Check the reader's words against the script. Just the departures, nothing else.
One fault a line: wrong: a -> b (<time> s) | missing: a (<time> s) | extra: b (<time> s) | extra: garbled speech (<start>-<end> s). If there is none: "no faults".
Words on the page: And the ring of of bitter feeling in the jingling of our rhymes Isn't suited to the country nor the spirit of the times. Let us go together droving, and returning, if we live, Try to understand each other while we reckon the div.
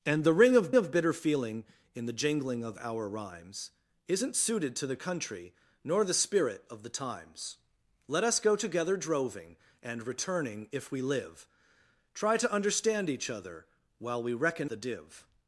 no faults